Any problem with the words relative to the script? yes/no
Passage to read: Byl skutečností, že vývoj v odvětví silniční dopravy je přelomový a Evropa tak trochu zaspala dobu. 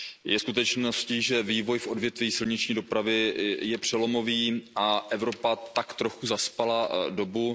yes